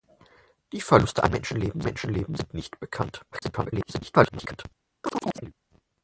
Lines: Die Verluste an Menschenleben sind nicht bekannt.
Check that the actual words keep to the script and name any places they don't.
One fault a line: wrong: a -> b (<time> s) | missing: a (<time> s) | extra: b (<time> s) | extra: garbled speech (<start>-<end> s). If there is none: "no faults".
extra: Menschenleben (1.8 s)
extra: garbled speech (3.3-4.7 s)